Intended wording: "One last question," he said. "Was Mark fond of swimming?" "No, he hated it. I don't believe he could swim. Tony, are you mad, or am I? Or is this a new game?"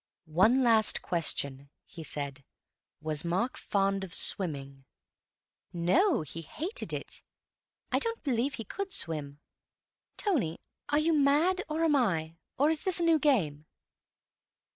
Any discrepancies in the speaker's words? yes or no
no